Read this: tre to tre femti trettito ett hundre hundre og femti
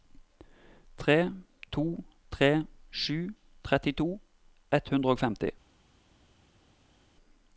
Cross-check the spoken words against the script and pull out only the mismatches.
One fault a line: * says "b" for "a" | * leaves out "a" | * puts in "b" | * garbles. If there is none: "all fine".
* says "sju" for "femti"
* leaves out "hundre"